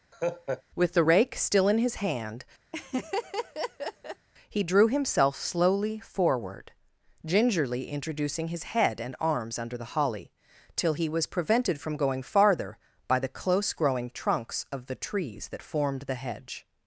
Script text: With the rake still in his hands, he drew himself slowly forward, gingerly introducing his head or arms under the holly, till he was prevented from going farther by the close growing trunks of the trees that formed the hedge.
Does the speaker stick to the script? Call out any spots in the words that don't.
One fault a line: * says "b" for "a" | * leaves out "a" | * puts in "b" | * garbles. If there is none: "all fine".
* says "hand" for "hands"
* says "and" for "or"